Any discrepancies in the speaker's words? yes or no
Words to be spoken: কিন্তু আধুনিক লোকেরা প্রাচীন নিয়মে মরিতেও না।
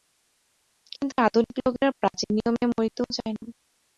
yes